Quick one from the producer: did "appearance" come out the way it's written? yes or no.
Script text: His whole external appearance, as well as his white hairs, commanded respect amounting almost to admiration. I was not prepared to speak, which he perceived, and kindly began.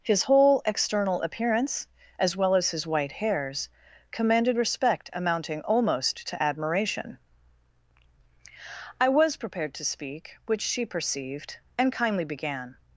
yes